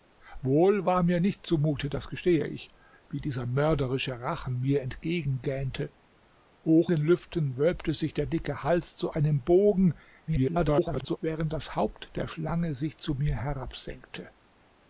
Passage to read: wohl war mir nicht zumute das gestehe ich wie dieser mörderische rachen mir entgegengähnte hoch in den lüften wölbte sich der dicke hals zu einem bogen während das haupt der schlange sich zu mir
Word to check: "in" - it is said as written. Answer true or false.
false